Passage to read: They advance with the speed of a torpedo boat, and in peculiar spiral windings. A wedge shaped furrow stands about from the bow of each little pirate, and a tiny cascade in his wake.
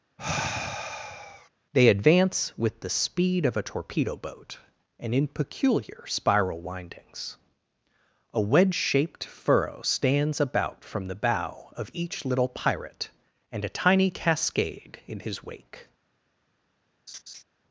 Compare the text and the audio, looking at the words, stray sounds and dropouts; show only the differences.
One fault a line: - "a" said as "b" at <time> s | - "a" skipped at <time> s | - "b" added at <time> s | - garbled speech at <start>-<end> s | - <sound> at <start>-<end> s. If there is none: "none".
- sigh at 0.2-1.5 s
- laugh at 17.1-17.4 s